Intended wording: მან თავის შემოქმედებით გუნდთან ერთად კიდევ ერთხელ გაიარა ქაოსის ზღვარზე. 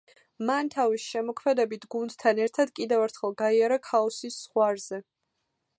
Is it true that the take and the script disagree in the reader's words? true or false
false